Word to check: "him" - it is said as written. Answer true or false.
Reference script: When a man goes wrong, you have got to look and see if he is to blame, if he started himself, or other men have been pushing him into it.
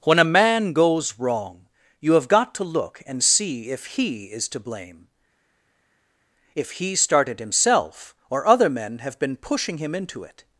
true